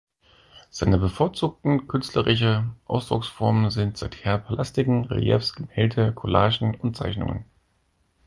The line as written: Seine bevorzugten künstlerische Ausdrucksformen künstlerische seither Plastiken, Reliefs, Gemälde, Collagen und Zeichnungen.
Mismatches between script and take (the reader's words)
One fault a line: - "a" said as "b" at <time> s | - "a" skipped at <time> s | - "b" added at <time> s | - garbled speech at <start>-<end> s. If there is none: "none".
- "künstlerische" said as "sind" at 3.7 s